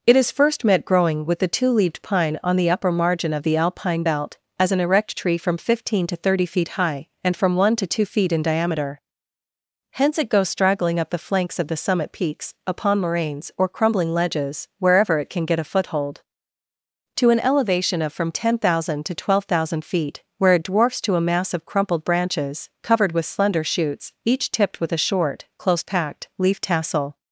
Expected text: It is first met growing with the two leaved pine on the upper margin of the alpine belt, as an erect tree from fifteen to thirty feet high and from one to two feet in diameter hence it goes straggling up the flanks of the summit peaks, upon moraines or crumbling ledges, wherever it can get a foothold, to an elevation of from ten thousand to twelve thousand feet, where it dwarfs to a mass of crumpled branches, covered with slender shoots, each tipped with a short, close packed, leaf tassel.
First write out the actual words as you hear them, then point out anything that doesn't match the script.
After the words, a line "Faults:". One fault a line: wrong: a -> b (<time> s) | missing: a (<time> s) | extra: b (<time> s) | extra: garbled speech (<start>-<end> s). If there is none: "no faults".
It is first met growing with the two leaved pine on the upper margin of the alpine belt, as an erect tree from fifteen to thirty feet high and from one to two feet in diameter hence it goes straggling up the flanks of the summit peaks, upon moraines or crumbling ledges, wherever it can get a foothold, to an elevation of from ten thousand to twelve thousand feet, where it dwarfs to a mass of crumpled branches, covered with slender shoots, each tipped with a short, close packed, leaf tassel.
Faults:
no faults